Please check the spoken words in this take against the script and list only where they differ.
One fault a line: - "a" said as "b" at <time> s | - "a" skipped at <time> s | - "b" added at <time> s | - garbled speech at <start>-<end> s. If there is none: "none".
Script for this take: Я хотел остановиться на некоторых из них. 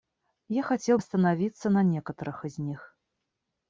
none